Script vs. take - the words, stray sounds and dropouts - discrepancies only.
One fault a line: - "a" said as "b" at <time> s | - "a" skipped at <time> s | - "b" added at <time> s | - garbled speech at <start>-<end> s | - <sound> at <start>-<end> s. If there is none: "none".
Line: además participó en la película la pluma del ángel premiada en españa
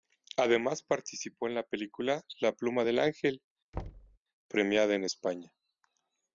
- thud at 3.7-4.2 s